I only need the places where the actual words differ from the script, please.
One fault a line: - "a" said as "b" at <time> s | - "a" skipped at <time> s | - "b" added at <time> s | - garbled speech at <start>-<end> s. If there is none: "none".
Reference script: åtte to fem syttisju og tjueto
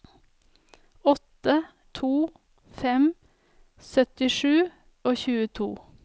none